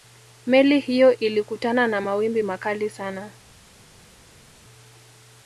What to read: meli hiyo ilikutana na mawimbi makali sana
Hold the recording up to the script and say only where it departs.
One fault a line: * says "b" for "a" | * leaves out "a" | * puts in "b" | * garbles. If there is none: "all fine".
all fine